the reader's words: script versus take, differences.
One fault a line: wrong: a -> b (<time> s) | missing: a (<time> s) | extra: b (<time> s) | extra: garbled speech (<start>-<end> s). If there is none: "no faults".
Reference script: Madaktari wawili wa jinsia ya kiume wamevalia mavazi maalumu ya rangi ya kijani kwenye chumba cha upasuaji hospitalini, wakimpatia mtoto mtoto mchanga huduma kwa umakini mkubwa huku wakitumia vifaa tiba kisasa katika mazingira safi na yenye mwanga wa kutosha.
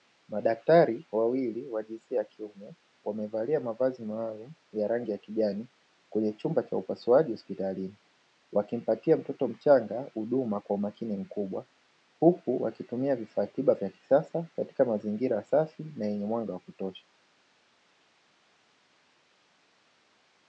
missing: mtoto (9.5 s)
extra: vya (13.7 s)